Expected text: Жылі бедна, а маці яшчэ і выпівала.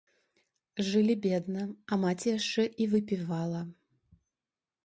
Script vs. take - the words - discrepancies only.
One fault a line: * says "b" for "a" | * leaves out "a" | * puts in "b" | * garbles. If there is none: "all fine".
all fine